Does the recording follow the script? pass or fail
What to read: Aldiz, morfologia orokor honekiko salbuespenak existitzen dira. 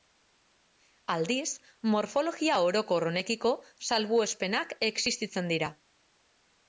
pass